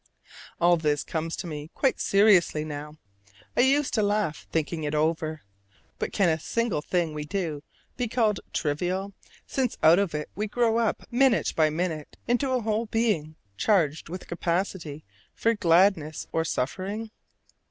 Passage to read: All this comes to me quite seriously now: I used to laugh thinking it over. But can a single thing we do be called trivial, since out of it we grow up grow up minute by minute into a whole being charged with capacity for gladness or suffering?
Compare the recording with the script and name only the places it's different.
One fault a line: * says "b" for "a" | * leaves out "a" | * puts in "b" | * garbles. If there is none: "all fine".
* leaves out "grow up"